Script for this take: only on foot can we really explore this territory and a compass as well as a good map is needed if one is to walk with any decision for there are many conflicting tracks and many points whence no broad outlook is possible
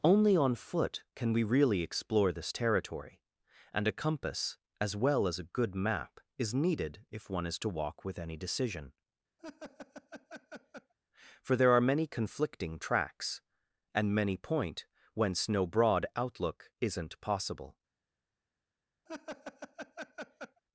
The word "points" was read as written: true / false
false